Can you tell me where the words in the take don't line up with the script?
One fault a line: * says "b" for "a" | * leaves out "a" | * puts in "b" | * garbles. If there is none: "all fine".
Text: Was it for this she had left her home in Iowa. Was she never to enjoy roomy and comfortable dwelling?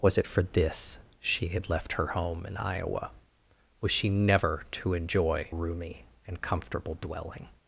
all fine